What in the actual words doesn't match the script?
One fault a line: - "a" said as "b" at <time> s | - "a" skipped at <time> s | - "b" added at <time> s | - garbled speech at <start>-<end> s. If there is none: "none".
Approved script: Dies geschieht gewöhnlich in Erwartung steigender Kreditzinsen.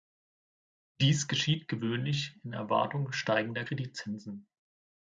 none